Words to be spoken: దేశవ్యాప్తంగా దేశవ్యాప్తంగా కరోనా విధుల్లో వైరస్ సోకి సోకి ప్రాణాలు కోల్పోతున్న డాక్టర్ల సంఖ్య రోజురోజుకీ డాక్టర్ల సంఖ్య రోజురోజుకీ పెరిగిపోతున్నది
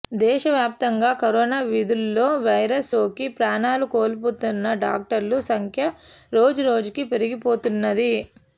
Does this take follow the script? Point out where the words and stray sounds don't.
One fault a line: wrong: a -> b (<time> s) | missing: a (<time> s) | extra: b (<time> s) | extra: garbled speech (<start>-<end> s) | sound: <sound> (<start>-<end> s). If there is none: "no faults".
missing: దేశవ్యాప్తంగా (1.1 s)
missing: సోకి (3.3 s)
missing: డాక్టర్ల సంఖ్య రోజురోజుకీ (7.0 s)